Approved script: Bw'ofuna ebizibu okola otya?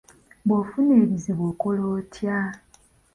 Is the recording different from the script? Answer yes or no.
no